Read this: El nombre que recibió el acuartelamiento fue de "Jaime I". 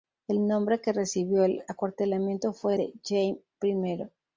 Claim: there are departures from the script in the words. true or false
false